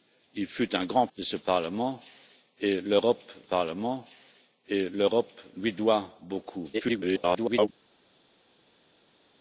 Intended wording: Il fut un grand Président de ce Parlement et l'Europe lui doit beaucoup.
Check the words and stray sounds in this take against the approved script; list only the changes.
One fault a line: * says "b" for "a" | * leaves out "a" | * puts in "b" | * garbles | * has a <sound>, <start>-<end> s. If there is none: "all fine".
* leaves out "Président"
* puts in "Parlement et l'Europe"
* garbles